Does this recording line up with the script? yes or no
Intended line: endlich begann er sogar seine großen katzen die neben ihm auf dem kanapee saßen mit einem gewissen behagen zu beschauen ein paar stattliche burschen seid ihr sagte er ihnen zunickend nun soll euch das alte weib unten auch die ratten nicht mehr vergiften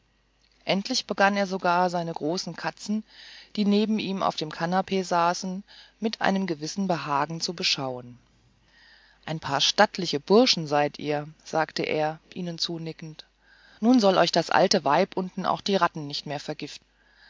yes